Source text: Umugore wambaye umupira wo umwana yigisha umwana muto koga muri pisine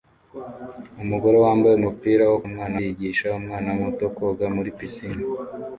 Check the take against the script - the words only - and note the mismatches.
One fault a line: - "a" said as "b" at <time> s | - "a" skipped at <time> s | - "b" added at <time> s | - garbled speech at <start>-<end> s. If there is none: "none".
none